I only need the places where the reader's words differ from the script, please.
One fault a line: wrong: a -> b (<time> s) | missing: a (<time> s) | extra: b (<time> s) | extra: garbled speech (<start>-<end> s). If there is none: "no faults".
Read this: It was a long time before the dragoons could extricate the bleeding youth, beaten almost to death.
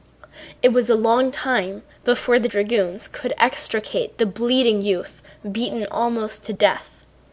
no faults